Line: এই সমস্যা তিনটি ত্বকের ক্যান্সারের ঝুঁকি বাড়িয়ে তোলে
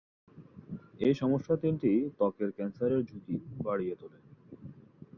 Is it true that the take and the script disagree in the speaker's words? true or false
false